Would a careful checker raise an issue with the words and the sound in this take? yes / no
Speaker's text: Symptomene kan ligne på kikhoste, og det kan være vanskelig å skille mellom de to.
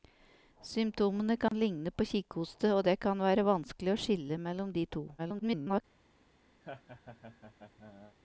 yes